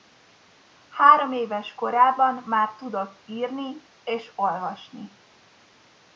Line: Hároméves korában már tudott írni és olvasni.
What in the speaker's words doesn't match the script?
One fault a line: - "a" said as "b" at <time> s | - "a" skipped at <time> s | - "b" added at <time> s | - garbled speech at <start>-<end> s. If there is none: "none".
none